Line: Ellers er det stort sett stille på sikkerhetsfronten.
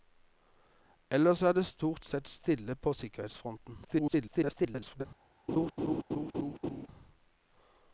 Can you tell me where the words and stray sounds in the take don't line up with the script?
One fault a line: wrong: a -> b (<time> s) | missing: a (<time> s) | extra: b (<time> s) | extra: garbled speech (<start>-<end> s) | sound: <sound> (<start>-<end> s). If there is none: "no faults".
extra: garbled speech (3.8-5.1 s)
sound: laugh (5.5-6.9 s)